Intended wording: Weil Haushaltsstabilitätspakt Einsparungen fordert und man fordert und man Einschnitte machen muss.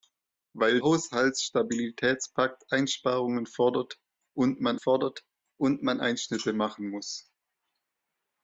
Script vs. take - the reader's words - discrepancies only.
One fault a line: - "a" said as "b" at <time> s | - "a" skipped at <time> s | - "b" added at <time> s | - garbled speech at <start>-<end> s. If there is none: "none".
none